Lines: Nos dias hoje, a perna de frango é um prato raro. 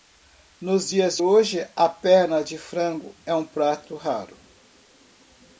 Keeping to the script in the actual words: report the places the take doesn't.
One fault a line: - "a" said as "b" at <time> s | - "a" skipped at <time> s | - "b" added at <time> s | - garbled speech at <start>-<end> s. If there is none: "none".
none